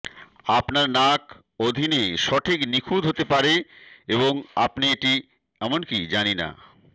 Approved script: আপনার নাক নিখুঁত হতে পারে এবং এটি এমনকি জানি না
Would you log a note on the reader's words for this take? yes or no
yes